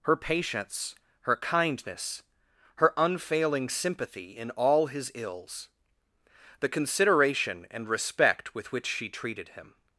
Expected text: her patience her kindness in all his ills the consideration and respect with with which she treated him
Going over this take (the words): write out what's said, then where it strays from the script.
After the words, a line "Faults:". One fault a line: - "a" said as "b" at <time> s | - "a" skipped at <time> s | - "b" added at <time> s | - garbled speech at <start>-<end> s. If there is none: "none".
her patience her kindness her unfailing sympathy in all his ills the consideration and respect with which she treated him
Faults:
- "her unfailing sympathy" added at 2.8 s
- "with" skipped at 8.7 s